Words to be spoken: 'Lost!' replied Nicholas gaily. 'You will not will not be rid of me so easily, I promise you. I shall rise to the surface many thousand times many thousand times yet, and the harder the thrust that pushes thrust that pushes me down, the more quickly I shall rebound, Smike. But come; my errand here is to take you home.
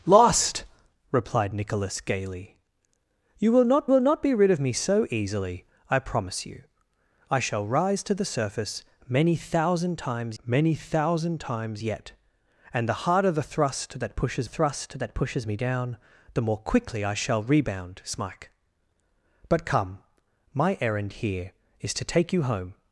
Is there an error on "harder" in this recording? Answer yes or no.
no